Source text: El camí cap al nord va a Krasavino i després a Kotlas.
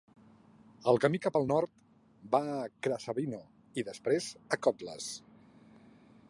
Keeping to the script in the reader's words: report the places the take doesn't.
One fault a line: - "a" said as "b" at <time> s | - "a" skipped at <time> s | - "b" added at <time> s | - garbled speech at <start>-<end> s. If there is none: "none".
none